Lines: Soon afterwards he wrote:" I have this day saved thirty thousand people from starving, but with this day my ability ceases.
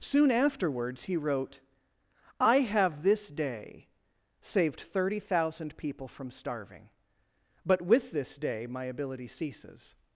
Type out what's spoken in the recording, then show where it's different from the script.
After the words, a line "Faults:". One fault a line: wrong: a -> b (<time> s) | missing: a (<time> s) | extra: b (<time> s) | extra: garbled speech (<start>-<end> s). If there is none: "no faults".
Soon afterwards he wrote:" I have this day saved thirty thousand people from starving, but with this day my ability ceases.
Faults:
no faults